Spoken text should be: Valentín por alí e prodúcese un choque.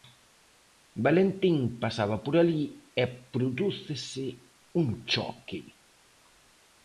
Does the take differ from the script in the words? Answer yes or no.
yes